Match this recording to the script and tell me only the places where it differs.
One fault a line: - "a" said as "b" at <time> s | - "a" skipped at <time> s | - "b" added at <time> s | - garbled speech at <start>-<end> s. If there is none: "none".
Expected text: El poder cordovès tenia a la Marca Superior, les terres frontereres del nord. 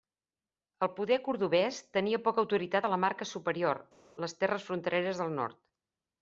- "poca autoritat" added at 2.3 s